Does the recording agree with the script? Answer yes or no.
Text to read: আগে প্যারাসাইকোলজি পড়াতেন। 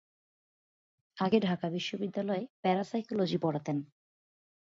no